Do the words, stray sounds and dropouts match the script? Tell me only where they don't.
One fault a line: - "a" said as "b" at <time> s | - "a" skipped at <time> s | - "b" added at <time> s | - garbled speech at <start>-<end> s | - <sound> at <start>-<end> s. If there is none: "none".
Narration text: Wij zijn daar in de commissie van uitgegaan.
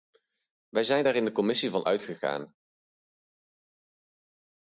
none